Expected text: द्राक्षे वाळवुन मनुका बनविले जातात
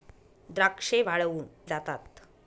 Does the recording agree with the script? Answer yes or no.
no